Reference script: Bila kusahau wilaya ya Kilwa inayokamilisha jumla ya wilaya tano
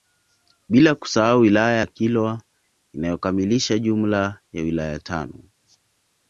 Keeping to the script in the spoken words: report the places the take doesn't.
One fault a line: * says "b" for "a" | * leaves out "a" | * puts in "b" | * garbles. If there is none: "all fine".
all fine